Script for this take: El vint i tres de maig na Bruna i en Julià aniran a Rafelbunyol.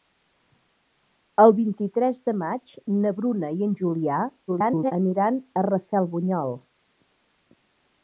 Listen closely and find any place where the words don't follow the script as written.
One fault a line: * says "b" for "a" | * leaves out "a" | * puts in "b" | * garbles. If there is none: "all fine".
* garbles